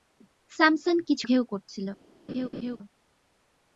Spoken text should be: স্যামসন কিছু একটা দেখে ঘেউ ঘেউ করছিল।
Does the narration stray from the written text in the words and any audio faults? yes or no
yes